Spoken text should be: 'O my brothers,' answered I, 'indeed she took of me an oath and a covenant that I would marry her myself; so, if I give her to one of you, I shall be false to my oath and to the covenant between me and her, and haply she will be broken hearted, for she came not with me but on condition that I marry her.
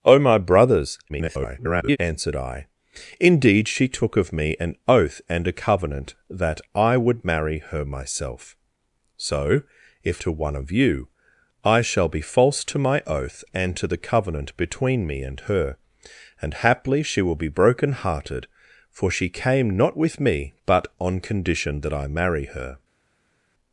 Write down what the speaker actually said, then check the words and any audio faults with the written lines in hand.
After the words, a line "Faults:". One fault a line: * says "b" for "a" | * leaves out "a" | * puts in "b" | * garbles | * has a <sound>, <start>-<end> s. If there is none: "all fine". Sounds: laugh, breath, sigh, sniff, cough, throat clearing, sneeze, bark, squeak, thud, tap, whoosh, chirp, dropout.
'O my brothers,' [garbled] answered I, 'indeed she took of me an oath and a covenant that I would marry her myself; so, if to one of you, I shall be false to my oath and to the covenant between me and her, and haply she will be broken hearted, for she came not with me but on condition that I marry her.
Faults:
* garbles
* leaves out "I give her"